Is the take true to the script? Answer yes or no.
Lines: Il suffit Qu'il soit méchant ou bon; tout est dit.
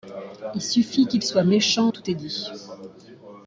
no